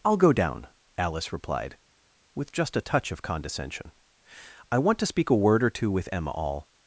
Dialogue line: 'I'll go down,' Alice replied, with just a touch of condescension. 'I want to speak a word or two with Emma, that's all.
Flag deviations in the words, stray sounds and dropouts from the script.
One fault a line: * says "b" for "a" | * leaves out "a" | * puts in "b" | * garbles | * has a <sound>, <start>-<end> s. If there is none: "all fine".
* leaves out "that's"